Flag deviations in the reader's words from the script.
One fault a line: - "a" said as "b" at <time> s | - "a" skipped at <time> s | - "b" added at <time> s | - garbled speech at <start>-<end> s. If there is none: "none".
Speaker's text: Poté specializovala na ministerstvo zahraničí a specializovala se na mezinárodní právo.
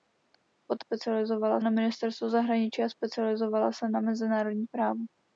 none